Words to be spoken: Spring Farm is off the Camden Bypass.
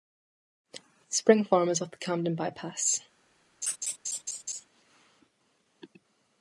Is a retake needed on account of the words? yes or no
no